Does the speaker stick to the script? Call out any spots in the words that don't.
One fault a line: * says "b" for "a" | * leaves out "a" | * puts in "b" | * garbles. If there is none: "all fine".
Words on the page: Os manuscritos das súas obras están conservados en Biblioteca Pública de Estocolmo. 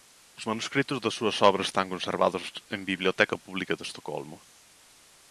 all fine